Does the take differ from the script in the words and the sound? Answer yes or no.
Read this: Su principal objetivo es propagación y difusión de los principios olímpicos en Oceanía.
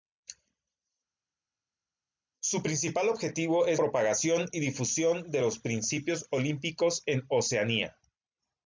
no